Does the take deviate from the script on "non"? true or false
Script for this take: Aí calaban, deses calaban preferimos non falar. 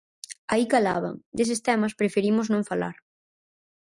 false